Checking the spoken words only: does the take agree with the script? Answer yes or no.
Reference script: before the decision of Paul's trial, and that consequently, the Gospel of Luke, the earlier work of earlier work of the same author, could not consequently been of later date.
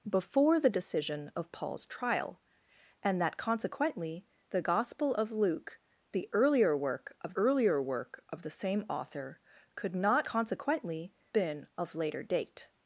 yes